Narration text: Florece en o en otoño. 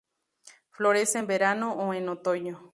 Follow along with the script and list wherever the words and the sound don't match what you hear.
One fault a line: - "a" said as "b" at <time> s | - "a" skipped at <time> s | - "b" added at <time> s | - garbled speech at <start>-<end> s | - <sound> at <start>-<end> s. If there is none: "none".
- "verano" added at 1.3 s